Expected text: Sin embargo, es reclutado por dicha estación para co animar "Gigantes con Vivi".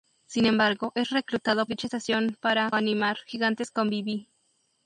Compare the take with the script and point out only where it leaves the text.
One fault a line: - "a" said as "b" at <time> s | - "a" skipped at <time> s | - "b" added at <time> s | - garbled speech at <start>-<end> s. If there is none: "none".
- "por" skipped at 1.7 s
- "co" skipped at 2.7 s